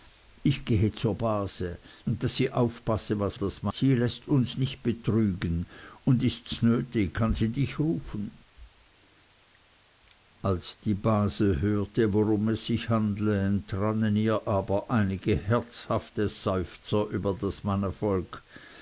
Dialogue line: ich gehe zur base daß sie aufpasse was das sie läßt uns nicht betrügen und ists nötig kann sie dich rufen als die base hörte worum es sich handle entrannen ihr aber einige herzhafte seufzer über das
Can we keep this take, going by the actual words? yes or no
yes